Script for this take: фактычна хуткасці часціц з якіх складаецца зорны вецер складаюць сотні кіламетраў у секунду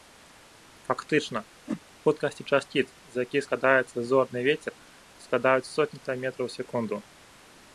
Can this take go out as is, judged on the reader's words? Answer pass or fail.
pass